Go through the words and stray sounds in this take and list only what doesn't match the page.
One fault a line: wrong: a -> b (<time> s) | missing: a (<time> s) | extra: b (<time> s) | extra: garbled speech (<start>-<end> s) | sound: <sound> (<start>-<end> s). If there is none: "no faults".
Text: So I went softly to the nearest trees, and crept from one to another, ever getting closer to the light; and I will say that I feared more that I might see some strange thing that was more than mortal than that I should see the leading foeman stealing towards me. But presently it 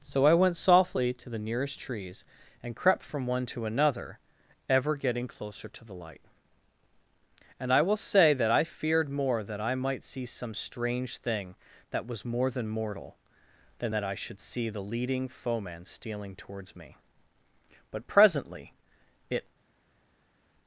no faults